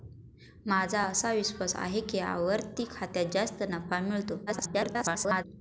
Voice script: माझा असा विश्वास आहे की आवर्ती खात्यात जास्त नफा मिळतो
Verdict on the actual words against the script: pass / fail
fail